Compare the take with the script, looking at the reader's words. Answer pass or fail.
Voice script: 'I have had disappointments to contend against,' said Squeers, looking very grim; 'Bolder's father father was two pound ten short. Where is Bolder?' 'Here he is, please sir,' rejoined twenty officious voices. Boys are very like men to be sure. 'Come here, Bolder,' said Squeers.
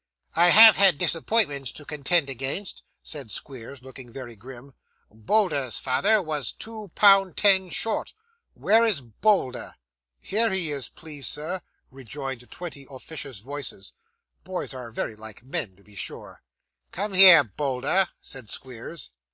fail